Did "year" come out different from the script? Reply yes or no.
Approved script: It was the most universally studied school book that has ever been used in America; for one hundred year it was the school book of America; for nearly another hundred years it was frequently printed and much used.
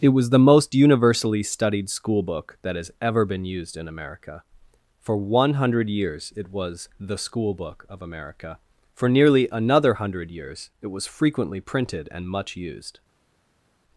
yes